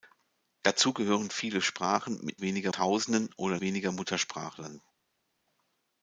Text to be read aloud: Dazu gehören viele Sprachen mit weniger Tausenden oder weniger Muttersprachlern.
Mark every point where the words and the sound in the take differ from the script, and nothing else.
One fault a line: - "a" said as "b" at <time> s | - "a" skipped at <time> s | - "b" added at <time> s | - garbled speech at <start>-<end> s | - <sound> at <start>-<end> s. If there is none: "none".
none